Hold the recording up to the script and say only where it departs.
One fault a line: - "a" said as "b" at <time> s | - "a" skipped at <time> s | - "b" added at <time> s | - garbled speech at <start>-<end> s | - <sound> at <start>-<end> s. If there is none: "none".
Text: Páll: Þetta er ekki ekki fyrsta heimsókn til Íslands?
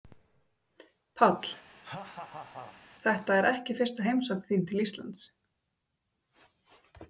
- laugh at 1.8-2.8 s
- "ekki" skipped at 3.8 s
- "þín" added at 4.5 s